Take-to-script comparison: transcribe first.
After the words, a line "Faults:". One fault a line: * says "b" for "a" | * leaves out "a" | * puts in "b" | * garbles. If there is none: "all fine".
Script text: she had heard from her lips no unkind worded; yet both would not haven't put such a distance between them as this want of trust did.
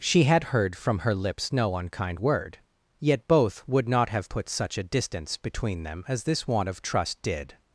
she had heard from her lips no unkind word; yet both would not have put such a distance between them as this want of trust did.
Faults:
* says "word" for "worded"
* says "have" for "haven't"